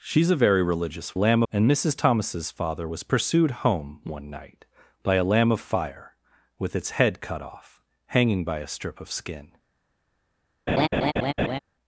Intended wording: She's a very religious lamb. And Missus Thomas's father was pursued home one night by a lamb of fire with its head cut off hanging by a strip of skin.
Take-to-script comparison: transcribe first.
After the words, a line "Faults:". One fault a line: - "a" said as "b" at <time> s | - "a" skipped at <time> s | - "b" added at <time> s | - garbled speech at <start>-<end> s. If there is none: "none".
She's a very religious lamb. And Missus Thomas's father was pursued home one night by a lamb of fire with its head cut off hanging by a strip of skin.
Faults:
none